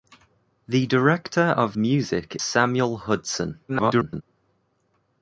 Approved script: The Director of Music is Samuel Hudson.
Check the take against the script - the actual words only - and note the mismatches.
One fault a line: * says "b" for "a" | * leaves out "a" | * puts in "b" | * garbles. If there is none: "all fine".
* leaves out "is"
* garbles